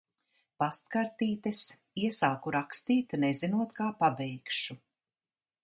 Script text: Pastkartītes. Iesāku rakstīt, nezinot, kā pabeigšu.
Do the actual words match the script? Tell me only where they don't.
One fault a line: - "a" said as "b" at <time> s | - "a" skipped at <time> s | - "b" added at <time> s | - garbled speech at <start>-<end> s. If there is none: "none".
none